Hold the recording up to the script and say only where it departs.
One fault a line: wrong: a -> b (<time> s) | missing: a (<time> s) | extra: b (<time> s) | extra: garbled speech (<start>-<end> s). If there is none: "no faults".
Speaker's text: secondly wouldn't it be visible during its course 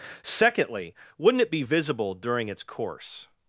no faults